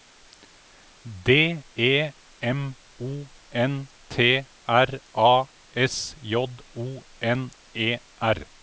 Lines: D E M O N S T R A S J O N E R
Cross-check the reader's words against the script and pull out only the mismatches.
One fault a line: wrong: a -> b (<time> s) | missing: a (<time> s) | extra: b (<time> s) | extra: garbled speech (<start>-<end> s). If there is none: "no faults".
missing: S (3.9 s)